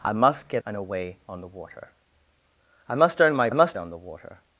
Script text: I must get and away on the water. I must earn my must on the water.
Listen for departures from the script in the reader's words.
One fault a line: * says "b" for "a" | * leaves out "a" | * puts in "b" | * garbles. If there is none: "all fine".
all fine